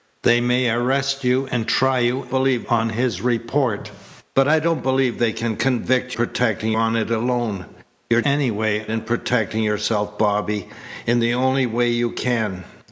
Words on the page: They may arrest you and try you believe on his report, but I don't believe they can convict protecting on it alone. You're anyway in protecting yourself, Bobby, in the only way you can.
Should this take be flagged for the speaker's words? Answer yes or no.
no